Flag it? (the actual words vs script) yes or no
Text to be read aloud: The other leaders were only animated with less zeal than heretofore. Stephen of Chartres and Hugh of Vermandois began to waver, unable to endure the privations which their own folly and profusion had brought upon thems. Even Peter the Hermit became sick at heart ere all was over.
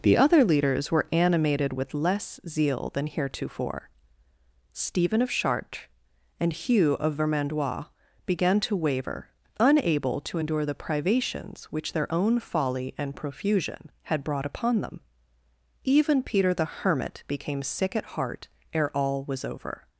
yes